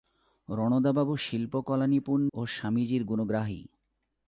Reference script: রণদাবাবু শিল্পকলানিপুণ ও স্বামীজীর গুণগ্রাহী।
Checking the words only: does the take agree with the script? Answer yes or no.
yes